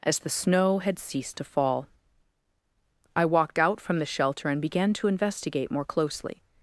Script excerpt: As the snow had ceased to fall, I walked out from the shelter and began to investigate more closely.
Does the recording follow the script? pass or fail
pass